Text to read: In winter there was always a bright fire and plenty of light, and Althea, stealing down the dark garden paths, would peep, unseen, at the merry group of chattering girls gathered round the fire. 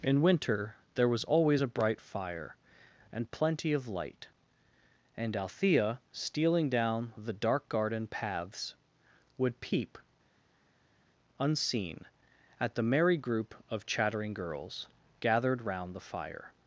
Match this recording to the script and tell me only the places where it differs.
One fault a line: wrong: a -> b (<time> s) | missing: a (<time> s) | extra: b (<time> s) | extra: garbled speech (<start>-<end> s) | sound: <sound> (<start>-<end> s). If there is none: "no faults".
no faults